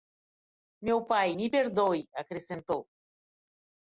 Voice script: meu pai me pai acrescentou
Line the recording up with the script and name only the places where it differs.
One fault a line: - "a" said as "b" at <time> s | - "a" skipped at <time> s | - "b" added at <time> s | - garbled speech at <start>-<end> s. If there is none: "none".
- "pai" said as "perdoe" at 1.5 s